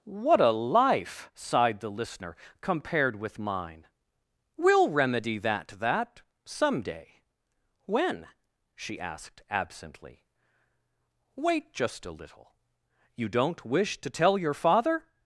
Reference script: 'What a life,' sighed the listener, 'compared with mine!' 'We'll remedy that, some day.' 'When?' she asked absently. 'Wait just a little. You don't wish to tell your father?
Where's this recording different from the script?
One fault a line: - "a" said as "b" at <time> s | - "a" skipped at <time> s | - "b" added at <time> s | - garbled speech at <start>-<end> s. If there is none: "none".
- "that" added at 5.8 s